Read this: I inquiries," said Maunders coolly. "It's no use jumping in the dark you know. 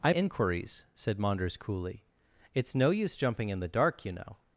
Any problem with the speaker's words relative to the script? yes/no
no